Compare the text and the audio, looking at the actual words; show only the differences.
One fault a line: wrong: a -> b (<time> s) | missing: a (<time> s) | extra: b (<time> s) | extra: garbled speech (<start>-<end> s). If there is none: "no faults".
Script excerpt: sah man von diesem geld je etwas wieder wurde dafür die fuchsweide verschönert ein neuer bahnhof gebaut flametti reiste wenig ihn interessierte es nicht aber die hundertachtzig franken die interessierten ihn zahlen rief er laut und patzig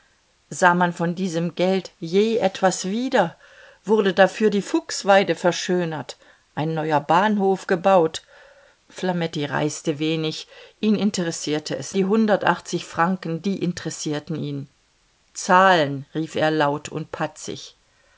missing: nicht aber (12.0 s)